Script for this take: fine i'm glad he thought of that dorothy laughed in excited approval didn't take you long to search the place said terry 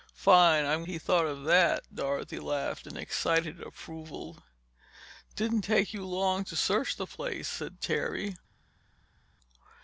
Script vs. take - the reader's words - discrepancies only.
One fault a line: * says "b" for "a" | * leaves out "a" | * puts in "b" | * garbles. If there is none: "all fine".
* leaves out "glad"